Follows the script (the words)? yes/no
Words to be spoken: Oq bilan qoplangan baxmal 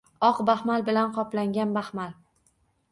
no